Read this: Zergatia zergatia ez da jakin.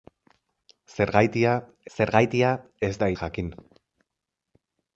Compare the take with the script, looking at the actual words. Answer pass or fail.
pass